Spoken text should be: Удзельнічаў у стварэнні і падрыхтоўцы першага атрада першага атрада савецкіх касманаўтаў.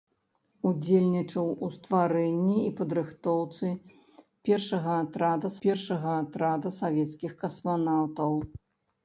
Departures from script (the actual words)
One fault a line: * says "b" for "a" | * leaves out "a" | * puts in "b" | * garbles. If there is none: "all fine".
all fine